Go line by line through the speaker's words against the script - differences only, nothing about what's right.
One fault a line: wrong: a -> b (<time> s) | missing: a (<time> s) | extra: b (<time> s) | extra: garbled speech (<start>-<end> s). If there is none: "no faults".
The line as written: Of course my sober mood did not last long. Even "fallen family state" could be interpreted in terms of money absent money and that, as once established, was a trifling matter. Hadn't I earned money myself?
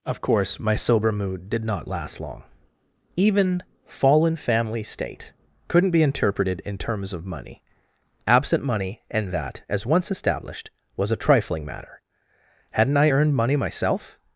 wrong: could -> couldn't (5.7 s)